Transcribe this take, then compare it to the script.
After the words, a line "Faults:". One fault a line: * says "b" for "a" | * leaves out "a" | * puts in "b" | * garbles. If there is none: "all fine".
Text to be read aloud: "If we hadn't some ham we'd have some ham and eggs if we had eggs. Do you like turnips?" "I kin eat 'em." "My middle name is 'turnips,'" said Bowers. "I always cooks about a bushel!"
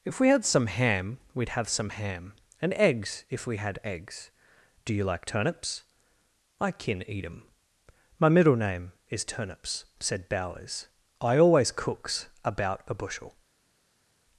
"If we had some ham we'd have some ham and eggs if we had eggs. Do you like turnips?" "I kin eat 'em." "My middle name is 'turnips,'" said Bowers. "I always cooks about a bushel!"
Faults:
* says "had" for "hadn't"